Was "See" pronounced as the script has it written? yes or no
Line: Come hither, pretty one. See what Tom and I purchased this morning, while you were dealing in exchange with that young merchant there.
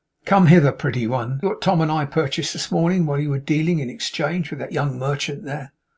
no